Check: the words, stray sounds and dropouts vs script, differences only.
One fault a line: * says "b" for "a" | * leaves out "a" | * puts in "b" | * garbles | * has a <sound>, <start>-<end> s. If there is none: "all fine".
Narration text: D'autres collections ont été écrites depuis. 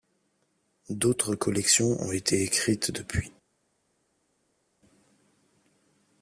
all fine